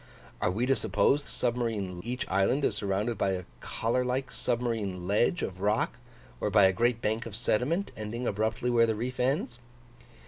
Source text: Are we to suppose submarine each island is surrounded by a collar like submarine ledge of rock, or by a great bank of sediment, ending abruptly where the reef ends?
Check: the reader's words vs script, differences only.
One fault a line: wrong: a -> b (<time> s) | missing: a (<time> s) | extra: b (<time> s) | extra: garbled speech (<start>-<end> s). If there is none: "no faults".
no faults